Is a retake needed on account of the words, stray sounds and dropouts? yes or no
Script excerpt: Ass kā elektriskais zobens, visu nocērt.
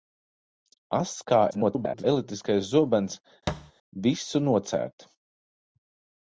yes